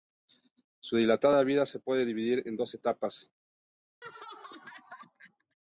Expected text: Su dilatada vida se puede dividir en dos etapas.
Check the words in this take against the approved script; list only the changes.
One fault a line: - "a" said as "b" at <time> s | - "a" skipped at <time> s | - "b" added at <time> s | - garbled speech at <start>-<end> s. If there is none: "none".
none